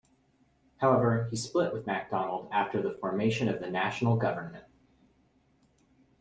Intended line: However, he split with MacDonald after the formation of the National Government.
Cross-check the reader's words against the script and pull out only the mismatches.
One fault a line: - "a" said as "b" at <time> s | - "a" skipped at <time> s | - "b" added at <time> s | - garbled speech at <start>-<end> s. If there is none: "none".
none